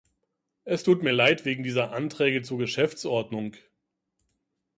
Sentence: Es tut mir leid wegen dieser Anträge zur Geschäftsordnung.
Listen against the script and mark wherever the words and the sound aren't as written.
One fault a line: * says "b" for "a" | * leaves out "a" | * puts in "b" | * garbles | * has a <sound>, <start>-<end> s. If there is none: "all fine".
all fine